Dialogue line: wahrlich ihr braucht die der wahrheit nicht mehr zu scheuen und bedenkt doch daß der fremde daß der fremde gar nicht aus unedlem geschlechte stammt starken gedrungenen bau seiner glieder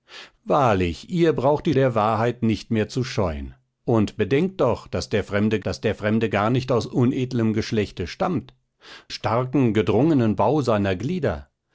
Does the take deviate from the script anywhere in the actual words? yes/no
no